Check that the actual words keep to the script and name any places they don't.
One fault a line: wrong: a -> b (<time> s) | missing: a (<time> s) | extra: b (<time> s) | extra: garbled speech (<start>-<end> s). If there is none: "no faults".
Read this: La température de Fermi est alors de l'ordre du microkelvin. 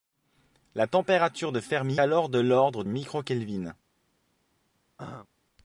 missing: est (2.0 s)
missing: du (2.8 s)